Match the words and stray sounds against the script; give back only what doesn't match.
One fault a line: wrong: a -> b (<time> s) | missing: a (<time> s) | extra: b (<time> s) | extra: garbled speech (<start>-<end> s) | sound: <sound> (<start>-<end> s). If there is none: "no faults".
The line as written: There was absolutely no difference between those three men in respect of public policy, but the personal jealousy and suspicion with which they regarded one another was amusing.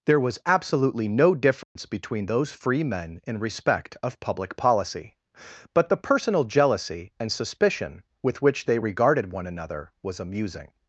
sound: dropout (1.6-1.8 s)
wrong: three -> free (2.5 s)